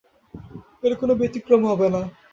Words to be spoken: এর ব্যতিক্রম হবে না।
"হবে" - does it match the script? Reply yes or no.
yes